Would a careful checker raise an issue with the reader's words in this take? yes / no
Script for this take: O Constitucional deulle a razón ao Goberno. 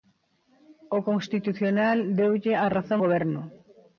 yes